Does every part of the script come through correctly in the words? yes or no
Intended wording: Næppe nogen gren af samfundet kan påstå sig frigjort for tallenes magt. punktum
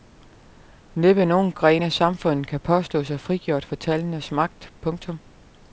yes